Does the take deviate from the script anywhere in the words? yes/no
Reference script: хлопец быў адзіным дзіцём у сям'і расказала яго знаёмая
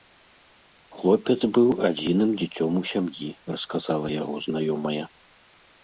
no